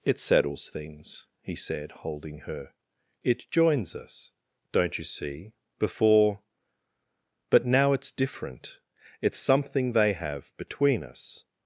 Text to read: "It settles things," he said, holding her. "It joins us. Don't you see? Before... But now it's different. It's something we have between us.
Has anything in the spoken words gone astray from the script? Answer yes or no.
yes